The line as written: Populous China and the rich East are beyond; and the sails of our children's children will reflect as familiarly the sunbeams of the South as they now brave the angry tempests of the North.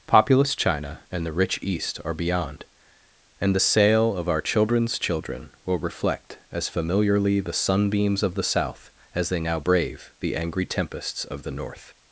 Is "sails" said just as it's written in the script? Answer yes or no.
no